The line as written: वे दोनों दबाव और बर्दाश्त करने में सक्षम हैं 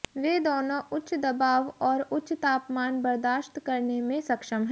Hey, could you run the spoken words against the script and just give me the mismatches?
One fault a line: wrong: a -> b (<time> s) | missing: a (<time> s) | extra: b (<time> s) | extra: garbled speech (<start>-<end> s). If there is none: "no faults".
extra: उच्च (0.9 s)
extra: उच्च तापमान (2.1 s)